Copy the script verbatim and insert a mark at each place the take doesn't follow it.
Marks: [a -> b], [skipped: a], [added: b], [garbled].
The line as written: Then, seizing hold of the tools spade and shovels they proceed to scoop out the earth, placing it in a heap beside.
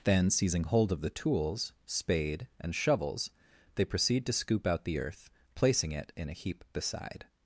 Then, seizing hold of the tools spade and shovels they proceed to scoop out the earth, placing it in a heap beside.